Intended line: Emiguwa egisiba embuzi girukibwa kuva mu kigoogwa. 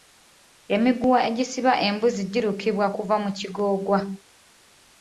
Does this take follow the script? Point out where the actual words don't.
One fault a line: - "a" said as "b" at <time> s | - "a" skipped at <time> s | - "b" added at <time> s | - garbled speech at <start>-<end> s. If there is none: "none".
none